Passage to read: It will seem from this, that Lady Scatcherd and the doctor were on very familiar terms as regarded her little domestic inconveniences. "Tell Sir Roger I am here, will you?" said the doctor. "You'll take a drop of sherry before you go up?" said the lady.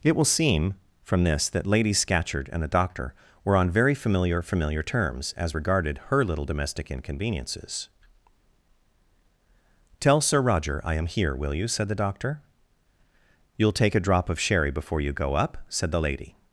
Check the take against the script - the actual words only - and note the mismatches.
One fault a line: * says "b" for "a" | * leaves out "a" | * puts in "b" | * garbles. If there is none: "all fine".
* puts in "familiar"